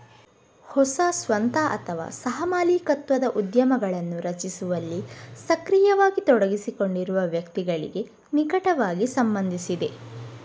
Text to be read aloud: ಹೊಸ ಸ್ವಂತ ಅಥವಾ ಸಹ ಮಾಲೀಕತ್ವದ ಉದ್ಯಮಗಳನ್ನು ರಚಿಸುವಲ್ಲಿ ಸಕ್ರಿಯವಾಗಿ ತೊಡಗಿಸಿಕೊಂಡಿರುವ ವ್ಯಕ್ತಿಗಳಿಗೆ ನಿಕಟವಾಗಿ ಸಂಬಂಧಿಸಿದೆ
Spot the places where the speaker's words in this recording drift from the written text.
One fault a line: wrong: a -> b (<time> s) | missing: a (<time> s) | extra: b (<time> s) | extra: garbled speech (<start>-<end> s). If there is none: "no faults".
no faults